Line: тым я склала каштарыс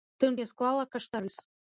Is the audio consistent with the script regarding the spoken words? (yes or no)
yes